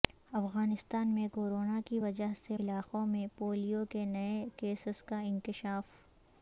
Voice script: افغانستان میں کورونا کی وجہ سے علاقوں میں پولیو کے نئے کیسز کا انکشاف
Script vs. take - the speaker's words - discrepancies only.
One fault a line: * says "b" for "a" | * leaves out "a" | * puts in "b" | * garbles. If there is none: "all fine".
all fine